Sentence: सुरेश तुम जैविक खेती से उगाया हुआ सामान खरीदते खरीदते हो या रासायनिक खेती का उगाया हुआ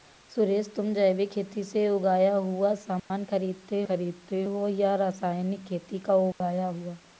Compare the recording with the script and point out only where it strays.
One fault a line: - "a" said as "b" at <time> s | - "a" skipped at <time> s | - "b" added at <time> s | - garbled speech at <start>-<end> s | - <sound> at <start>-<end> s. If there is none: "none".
- dropout at 3.0-3.1 s
- dropout at 6.3-6.4 s